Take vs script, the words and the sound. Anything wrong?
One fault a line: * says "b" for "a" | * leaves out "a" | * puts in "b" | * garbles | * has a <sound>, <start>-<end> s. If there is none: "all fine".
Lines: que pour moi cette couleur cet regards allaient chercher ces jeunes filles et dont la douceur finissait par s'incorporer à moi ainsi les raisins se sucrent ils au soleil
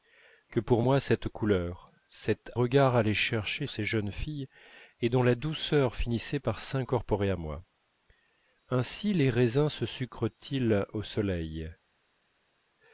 all fine